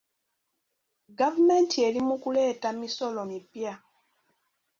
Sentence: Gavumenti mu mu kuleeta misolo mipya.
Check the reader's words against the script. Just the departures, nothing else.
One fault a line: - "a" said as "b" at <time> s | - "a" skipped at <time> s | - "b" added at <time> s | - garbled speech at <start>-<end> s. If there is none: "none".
- "mu" said as "eri" at 1.9 s